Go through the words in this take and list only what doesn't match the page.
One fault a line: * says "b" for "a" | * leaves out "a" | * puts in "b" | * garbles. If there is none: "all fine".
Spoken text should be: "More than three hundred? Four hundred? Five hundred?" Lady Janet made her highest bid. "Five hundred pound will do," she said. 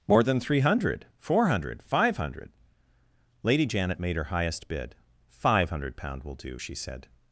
all fine